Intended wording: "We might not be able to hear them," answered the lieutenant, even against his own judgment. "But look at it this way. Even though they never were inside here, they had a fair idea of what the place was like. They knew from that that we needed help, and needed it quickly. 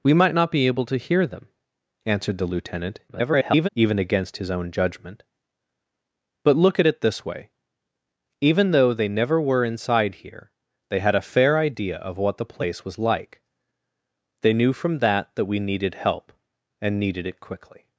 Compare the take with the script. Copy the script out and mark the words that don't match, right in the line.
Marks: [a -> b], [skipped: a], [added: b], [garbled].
"We might not be able to hear them," answered the lieutenant, [garbled] even against his own judgment. "But look at it this way. Even though they never were inside here, they had a fair idea of what the place was like. They knew from that that we needed help, and needed it quickly.